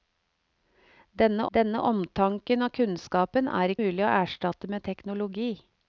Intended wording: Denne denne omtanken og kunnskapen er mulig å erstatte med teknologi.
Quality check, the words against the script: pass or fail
pass